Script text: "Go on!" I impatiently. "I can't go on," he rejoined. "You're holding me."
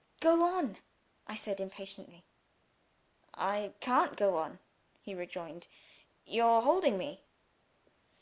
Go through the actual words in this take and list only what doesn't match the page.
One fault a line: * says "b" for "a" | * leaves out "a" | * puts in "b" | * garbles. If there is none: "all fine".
* puts in "said"